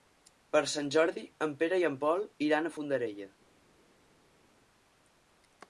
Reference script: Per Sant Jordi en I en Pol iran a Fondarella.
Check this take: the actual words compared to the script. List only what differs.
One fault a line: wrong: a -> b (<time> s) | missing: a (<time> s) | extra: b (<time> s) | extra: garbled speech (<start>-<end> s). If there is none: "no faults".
extra: Pere (1.6 s)